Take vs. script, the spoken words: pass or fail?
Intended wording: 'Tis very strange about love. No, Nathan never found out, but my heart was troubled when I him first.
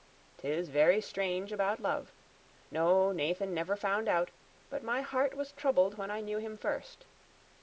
fail